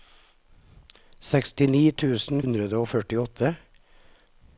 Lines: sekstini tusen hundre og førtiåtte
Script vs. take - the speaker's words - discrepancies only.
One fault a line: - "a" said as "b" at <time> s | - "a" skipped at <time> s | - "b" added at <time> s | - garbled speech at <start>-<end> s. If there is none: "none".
none